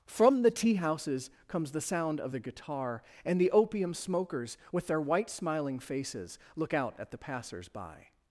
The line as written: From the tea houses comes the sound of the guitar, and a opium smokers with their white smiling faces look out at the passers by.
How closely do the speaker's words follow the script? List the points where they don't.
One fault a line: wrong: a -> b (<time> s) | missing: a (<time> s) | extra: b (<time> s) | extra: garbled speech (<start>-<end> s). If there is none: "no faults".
wrong: a -> the (3.4 s)